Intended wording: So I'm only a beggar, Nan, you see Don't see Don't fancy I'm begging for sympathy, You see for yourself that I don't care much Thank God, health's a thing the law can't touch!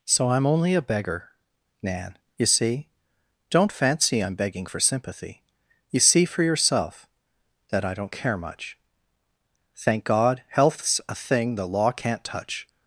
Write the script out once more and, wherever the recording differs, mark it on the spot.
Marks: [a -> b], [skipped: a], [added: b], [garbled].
So I'm only a beggar, Nan, you see Don't [skipped: see Don't] fancy I'm begging for sympathy, You see for yourself that I don't care much Thank God, health's a thing the law can't touch!